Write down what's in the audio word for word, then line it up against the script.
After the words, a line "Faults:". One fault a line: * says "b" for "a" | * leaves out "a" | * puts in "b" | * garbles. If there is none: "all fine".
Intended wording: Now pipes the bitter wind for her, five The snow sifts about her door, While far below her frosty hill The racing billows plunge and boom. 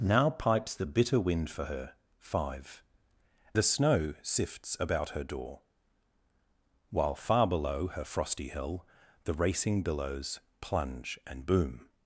Now pipes the bitter wind for her, five The snow sifts about her door, While far below her frosty hill The racing billows plunge and boom.
Faults:
all fine